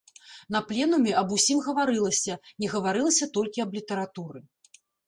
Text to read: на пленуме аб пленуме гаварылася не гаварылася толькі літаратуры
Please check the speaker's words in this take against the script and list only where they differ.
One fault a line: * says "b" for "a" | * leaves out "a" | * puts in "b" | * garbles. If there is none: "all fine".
* says "усім" for "пленуме"
* puts in "аб"